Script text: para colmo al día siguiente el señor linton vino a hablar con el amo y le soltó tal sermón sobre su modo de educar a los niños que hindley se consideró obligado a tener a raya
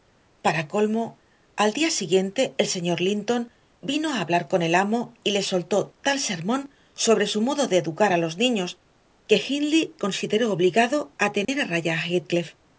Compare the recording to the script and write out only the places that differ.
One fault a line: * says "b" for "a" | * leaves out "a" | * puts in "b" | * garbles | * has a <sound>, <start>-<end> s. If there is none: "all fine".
* leaves out "se"
* has a dropout, 11.4-11.5 s